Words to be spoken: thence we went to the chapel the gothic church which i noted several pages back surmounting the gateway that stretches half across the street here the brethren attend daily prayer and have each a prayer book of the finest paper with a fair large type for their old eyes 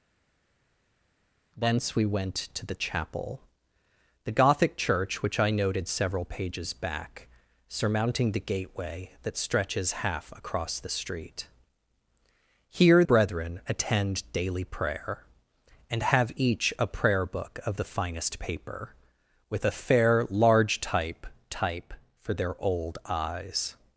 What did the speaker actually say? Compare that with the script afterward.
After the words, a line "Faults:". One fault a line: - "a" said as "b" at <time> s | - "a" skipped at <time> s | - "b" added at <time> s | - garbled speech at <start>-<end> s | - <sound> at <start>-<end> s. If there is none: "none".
thence we went to the chapel the gothic church which i noted several pages back surmounting the gateway that stretches half across the street here brethren attend daily prayer and have each a prayer book of the finest paper with a fair large type type for their old eyes
Faults:
- "the" skipped at 13.0 s
- "type" added at 21.5 s